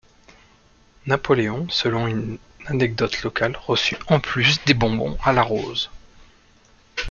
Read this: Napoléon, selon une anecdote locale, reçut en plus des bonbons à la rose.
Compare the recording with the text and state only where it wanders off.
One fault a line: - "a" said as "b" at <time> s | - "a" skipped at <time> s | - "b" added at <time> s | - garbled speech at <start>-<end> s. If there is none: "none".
none